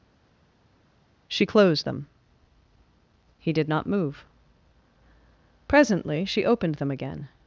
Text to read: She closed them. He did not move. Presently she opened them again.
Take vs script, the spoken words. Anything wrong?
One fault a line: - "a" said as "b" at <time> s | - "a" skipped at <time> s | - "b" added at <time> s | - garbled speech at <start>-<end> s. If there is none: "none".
none